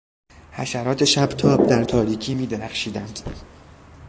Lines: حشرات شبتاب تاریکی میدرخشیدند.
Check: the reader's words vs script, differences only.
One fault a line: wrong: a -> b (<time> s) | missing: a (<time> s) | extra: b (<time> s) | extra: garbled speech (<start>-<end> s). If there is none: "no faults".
extra: در (1.7 s)